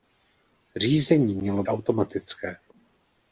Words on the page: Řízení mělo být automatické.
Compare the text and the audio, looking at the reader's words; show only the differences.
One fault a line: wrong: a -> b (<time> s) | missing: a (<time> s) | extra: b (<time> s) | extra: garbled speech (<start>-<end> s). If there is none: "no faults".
missing: být (1.6 s)